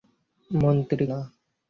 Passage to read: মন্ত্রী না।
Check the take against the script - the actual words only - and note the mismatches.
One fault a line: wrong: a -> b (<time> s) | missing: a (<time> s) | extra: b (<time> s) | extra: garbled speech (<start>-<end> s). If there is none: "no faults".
no faults